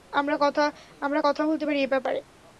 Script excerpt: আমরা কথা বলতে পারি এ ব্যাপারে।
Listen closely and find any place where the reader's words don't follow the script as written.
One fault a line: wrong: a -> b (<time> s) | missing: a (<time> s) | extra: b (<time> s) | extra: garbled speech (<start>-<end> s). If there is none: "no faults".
no faults